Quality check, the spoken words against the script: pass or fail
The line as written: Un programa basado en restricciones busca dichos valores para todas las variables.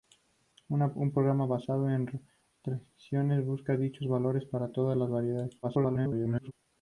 fail